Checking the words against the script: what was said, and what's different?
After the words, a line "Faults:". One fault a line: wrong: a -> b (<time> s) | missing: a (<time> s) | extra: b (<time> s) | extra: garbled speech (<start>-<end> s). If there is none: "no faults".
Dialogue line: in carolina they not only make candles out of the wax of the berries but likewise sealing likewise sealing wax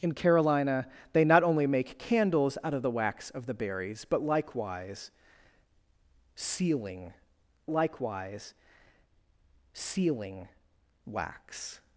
in carolina they not only make candles out of the wax of the berries but likewise sealing likewise sealing wax
Faults:
no faults